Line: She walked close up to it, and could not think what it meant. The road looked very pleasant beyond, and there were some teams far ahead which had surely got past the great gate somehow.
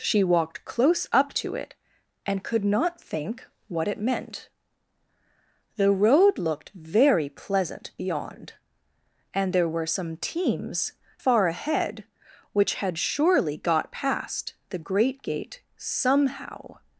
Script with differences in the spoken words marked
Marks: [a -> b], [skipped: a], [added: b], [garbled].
She walked close up to it, and could not think what it meant. The road looked very pleasant beyond, and there were some teams far ahead which had surely got past the great gate somehow.